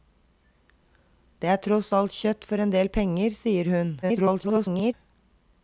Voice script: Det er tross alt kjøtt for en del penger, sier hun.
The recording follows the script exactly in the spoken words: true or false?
false